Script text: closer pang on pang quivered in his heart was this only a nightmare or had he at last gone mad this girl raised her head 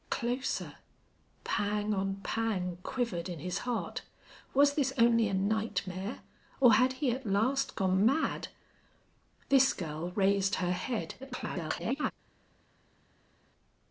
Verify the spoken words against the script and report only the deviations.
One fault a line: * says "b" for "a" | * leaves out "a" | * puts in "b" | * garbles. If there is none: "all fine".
* garbles